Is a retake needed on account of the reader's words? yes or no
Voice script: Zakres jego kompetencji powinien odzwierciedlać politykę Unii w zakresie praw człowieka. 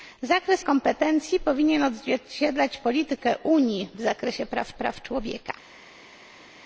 yes